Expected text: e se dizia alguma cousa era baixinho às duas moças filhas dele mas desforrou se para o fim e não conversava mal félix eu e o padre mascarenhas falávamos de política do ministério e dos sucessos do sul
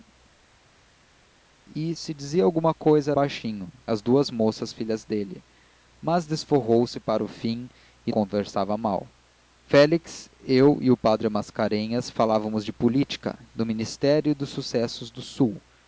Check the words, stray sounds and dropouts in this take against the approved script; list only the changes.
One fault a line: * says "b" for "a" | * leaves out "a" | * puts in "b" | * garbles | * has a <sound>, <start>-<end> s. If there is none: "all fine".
* leaves out "era"
* leaves out "não"